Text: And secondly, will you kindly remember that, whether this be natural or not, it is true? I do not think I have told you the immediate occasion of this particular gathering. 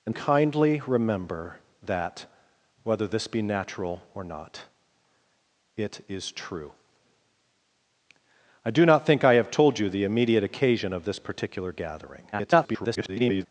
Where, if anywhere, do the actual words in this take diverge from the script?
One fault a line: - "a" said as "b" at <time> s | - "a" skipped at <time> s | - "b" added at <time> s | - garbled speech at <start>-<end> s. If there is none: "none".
- "secondly will you" skipped at 0.1 s
- garbled speech at 12.3-13.5 s